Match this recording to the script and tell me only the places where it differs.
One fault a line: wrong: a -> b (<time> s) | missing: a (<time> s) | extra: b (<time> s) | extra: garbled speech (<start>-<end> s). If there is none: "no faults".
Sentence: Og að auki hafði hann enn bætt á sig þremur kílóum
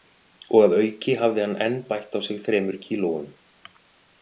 no faults